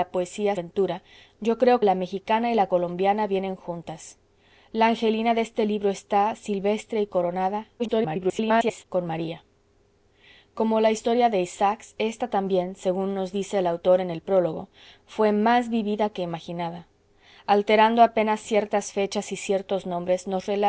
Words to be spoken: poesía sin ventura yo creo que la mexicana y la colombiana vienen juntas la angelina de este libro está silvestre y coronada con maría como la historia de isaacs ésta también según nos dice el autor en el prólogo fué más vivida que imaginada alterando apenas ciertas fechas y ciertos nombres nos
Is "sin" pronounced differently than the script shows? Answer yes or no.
yes